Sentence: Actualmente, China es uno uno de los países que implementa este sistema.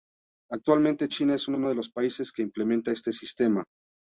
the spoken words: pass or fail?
pass